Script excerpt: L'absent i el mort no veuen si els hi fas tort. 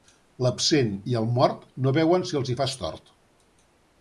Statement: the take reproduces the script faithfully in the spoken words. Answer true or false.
true